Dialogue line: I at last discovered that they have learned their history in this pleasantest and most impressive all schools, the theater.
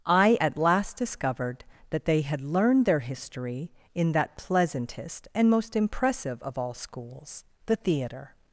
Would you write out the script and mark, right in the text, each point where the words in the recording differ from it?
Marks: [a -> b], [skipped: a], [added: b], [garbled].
I at last discovered that they [have -> had] learned their history in [this -> that] pleasantest and most impressive [added: of] all schools, the theater.